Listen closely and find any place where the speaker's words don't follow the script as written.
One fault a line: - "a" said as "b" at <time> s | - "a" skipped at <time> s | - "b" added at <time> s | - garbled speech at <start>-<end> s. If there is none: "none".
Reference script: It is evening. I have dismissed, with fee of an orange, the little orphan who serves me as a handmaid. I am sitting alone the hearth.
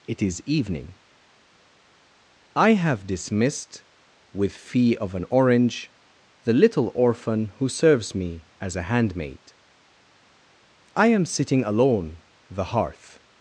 none